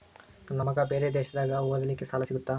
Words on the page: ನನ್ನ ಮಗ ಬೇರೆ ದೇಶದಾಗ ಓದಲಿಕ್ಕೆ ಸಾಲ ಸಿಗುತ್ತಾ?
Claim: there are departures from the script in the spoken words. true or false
false